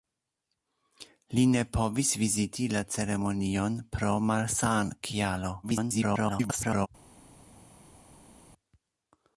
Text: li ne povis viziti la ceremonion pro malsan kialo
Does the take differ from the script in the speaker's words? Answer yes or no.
yes